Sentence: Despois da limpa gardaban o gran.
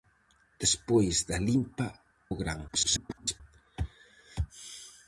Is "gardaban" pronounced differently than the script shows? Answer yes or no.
yes